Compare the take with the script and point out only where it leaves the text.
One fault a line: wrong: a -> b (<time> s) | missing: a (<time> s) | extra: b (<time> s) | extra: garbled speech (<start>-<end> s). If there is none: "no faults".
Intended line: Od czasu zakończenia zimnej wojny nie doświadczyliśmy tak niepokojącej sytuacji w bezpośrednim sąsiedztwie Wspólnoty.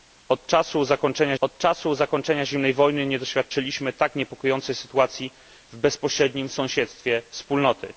extra: od czasu zakończenia (1.4 s)